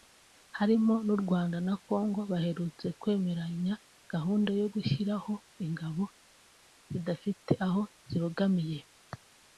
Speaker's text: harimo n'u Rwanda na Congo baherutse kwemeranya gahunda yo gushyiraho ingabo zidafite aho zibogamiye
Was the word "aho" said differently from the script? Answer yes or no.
no